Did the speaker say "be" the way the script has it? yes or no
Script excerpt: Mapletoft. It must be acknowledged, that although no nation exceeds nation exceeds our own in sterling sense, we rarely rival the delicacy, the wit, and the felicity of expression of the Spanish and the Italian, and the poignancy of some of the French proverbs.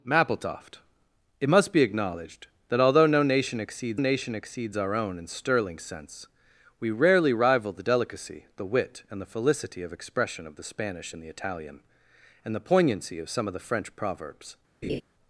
yes